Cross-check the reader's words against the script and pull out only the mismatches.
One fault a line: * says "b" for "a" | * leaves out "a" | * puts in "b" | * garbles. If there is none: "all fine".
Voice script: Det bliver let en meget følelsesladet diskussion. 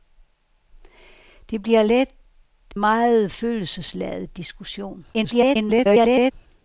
* leaves out "en"
* garbles